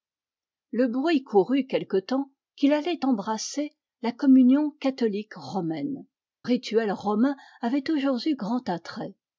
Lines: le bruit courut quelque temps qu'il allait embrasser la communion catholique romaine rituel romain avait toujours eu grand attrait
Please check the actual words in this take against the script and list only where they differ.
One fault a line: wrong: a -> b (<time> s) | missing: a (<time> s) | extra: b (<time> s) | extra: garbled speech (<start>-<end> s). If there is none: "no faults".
no faults